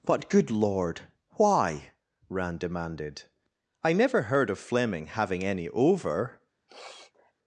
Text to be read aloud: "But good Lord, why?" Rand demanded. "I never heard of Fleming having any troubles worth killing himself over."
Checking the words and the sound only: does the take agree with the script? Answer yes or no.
no